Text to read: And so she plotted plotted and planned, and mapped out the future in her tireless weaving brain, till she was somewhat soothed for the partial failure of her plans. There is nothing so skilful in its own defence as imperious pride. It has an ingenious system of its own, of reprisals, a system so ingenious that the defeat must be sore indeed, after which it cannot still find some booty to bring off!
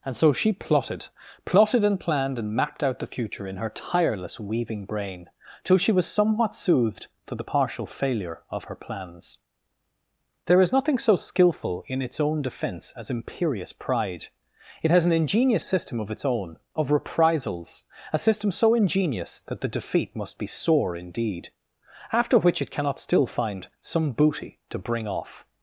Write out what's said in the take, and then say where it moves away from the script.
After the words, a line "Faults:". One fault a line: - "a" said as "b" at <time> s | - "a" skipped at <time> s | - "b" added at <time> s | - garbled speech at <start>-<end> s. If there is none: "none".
And so she plotted plotted and planned, and mapped out the future in her tireless weaving brain, till she was somewhat soothed for the partial failure of her plans. There is nothing so skilful in its own defence as imperious pride. It has an ingenious system of its own, of reprisals, a system so ingenious that the defeat must be sore indeed, after which it cannot still find some booty to bring off!
Faults:
none